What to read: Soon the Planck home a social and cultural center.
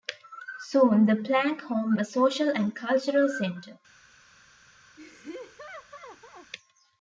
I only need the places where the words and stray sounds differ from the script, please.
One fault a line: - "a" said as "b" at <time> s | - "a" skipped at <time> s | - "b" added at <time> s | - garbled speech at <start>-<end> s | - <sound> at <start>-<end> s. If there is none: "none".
- laugh at 5.0-6.5 s